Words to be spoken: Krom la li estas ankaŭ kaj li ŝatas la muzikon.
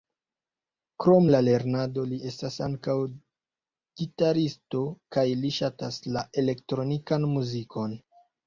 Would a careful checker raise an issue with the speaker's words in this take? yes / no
yes